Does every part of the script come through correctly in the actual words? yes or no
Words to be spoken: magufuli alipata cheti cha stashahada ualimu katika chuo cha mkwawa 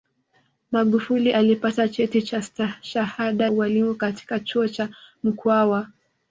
yes